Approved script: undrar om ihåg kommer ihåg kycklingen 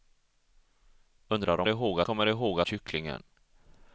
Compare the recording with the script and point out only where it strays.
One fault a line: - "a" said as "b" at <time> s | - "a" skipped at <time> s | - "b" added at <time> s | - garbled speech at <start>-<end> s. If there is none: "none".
none